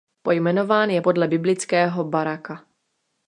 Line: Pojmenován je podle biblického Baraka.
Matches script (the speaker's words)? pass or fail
pass